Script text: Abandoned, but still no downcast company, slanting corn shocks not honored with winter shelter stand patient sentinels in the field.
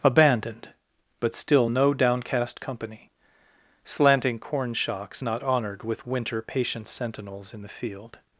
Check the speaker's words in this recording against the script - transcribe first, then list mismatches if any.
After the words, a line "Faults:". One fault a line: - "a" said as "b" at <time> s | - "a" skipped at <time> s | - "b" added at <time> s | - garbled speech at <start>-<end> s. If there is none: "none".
Abandoned, but still no downcast company, slanting corn shocks not honored with winter patient sentinels in the field.
Faults:
- "shelter stand" skipped at 6.4 s